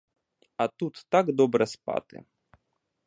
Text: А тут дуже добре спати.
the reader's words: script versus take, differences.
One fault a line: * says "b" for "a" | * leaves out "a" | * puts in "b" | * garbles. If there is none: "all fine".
* says "так" for "дуже"